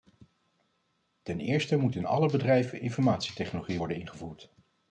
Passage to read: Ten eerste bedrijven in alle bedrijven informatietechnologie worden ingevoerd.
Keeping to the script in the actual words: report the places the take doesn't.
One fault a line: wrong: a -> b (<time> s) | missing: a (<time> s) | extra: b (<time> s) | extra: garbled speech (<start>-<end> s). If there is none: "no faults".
wrong: bedrijven -> moet (1.8 s)